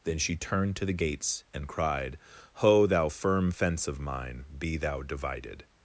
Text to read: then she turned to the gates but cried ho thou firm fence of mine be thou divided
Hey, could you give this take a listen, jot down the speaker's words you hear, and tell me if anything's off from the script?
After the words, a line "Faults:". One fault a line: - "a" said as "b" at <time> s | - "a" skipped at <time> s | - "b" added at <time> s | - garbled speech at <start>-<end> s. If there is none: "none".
then she turned to the gates and cried ho thou firm fence of mine be thou divided
Faults:
- "but" said as "and" at 1.5 s